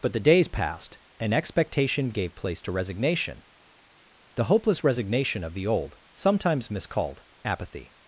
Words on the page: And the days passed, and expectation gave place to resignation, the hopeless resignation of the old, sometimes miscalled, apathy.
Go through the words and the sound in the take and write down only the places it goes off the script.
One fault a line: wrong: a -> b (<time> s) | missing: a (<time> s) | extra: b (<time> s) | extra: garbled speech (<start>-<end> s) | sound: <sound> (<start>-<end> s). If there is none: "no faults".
wrong: And -> But (0.0 s)